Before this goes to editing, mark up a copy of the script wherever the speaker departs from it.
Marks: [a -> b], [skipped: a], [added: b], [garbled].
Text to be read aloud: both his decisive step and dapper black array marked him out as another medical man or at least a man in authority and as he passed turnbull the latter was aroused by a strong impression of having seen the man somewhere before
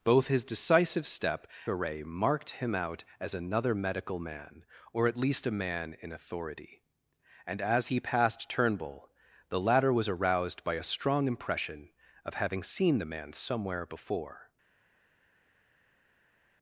both his decisive step [skipped: and dapper black] array marked him out as another medical man or at least a man in authority and as he passed turnbull the latter was aroused by a strong impression of having seen the man somewhere before